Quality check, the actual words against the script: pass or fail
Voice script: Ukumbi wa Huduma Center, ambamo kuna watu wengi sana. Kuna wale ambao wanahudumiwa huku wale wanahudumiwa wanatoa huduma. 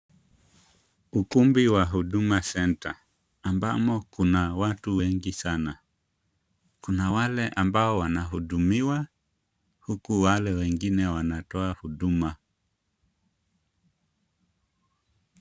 fail